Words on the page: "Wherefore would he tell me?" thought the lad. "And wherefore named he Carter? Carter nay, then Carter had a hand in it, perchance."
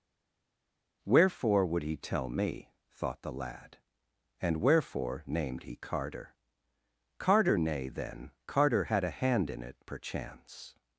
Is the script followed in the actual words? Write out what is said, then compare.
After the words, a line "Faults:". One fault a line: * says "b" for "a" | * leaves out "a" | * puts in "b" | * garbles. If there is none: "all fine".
"Wherefore would he tell me?" thought the lad. "And wherefore named he Carter? Carter nay, then Carter had a hand in it, perchance."
Faults:
all fine